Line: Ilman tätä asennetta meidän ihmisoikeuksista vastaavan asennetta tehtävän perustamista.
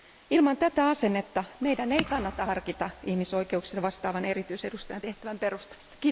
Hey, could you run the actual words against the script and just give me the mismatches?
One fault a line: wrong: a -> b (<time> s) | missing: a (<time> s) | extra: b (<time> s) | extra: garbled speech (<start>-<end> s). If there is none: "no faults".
extra: ei kannata harkita (1.9 s)
wrong: asennetta -> erityisedustajan (4.2 s)